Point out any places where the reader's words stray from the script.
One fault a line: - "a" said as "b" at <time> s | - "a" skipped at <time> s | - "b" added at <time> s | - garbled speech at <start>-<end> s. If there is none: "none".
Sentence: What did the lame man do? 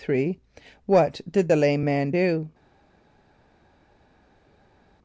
none